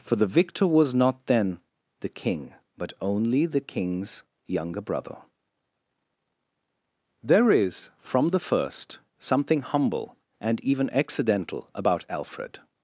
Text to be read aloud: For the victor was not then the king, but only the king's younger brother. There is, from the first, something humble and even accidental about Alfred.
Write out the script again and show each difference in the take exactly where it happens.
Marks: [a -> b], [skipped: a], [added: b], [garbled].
For the victor was not then the king, but only the king's younger brother. There is, from the first, something humble and even accidental about Alfred.